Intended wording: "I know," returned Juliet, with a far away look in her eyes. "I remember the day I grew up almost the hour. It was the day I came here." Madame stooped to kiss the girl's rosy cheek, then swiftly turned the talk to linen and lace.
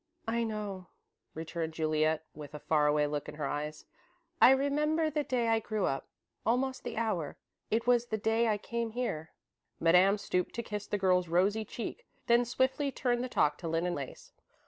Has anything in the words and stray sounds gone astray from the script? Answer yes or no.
yes